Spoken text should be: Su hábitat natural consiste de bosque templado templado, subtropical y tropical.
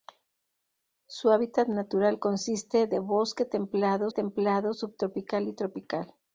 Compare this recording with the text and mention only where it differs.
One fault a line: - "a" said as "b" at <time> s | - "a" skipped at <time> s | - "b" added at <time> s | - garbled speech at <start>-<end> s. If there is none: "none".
none